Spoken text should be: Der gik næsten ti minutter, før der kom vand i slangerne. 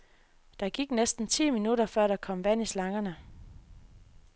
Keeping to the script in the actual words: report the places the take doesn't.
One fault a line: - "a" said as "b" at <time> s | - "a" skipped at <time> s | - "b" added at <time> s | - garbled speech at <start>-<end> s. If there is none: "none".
none